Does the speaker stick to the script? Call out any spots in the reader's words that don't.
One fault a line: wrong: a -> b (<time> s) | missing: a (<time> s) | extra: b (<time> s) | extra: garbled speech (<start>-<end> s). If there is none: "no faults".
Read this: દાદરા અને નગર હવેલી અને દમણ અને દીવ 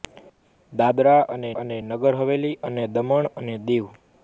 extra: અને (1.5 s)